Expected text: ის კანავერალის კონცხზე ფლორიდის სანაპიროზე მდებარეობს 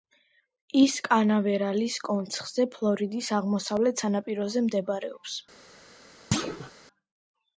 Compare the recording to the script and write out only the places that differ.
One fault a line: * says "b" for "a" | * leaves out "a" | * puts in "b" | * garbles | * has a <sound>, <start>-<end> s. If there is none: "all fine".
* puts in "აღმოსავლეთ"
* has a thud, 6.3-6.7 s